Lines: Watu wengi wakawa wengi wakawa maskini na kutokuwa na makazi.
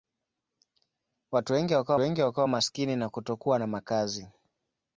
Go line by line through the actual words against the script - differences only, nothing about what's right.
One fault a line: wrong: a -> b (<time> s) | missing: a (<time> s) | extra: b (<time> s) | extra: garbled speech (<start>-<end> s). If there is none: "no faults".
no faults